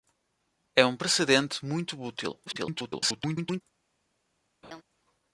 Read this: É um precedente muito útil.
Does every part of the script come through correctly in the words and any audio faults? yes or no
no